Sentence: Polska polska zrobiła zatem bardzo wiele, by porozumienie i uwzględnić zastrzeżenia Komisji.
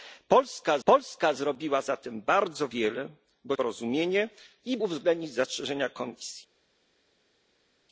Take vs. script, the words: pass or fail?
pass